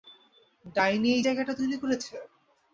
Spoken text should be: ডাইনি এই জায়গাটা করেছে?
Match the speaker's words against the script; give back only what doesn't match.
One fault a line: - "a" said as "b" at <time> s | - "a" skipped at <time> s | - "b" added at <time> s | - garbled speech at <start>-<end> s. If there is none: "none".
- "তৈরি" added at 1.6 s